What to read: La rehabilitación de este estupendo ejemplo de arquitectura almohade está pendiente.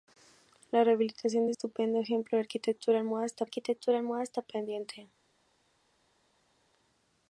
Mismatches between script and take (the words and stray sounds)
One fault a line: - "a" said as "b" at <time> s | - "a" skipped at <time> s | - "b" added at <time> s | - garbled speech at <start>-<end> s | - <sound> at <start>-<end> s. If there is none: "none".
- "este" skipped at 1.5 s
- "arquitectura almohade está" added at 3.4 s